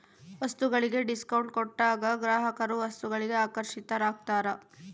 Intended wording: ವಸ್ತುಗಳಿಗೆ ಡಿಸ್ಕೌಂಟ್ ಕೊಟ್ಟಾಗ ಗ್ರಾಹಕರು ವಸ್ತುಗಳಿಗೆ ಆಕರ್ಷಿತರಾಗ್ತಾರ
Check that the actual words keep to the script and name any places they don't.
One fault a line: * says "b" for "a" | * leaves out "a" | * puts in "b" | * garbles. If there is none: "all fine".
all fine